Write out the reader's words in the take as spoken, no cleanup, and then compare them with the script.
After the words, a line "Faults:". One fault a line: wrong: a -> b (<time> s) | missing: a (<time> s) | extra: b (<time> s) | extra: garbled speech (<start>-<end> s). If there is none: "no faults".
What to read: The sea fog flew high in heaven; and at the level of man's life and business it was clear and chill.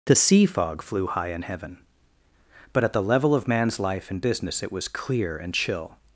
The sea fog flew high in heaven; but at the level of man's life and business it was clear and chill.
Faults:
wrong: and -> but (2.7 s)